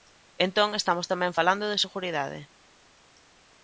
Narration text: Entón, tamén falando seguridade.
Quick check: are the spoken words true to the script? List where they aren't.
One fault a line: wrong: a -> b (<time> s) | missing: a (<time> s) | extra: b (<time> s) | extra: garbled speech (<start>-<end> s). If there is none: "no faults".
extra: estamos (0.8 s)
extra: de (1.7 s)